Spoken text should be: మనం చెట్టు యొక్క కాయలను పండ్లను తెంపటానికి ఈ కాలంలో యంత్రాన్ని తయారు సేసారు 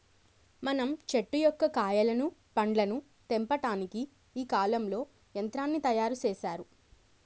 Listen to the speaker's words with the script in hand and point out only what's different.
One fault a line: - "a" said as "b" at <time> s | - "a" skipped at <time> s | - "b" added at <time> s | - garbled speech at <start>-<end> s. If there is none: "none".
none